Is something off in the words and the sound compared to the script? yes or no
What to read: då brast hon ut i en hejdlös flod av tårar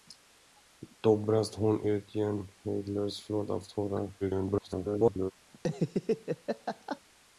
yes